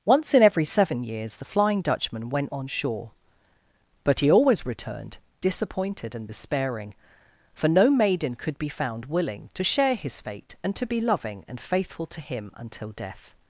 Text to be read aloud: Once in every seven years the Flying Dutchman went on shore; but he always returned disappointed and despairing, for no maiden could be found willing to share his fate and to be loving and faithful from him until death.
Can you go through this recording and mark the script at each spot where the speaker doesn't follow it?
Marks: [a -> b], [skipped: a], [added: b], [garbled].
Once in every seven years the Flying Dutchman went on shore; but he always returned disappointed and despairing, for no maiden could be found willing to share his fate and to be loving and faithful [from -> to] him until death.